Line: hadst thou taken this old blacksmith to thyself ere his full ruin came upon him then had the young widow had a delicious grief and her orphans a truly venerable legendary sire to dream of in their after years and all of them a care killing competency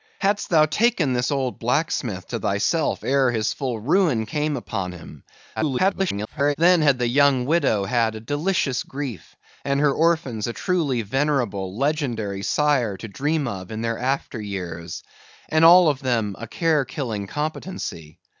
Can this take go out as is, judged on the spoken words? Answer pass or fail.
fail